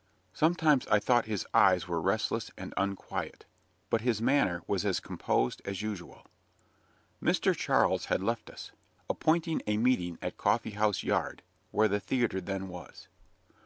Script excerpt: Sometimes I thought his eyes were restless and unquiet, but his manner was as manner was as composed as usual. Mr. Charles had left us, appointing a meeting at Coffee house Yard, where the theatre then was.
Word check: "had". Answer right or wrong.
right